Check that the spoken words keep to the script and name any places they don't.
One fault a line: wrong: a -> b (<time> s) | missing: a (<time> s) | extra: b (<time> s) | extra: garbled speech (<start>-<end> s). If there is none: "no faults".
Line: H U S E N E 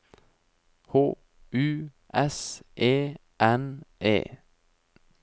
no faults